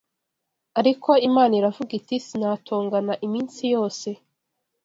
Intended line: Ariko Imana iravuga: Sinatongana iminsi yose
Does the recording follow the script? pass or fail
fail